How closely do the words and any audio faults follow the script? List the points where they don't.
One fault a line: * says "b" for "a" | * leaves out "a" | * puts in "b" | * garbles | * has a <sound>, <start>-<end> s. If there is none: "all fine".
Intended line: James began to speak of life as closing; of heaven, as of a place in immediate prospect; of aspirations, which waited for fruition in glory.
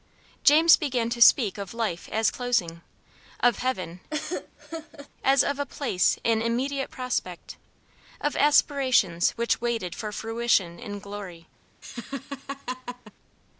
* has a laugh, 4.1-5.1 s
* has a laugh, 11.8-13.1 s